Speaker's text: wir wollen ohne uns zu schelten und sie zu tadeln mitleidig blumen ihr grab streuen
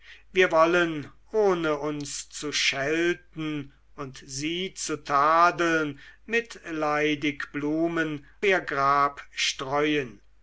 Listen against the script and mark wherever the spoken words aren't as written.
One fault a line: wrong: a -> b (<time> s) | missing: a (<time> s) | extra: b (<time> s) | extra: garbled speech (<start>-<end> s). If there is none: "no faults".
no faults